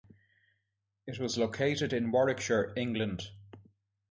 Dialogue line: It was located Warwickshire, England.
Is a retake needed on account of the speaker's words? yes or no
yes